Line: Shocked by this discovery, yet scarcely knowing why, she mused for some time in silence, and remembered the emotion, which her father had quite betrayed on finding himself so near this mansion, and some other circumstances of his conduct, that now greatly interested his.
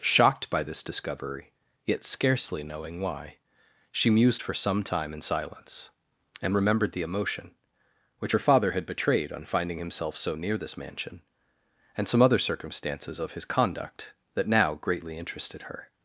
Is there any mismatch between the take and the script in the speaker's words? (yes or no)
yes